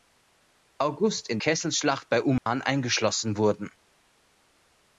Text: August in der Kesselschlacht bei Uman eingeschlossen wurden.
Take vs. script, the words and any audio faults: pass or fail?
fail